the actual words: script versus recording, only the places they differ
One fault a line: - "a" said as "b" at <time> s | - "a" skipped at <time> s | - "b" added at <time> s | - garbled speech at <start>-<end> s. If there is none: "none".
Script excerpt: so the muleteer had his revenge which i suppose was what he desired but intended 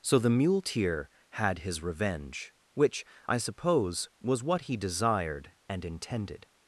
- "but" said as "and" at 5.7 s